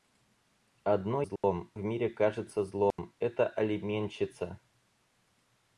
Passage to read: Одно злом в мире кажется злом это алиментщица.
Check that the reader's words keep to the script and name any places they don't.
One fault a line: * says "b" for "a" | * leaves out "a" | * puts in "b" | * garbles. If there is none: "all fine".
all fine